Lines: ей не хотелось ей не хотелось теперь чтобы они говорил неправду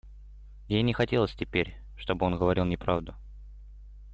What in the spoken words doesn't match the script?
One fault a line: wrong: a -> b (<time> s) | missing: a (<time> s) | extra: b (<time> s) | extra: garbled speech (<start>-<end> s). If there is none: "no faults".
missing: ей не хотелось (1.4 s)
wrong: они -> он (2.2 s)